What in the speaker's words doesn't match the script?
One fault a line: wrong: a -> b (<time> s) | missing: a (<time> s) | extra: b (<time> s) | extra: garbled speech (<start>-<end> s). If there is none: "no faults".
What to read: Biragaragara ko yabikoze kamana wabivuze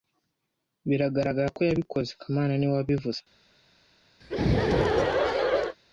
extra: niwe (2.5 s)